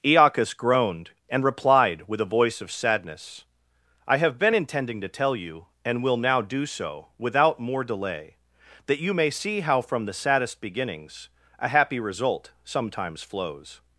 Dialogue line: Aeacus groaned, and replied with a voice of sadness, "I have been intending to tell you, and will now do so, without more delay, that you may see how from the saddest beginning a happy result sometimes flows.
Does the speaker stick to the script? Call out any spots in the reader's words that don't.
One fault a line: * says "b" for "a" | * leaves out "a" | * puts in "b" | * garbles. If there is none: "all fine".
* says "beginnings" for "beginning"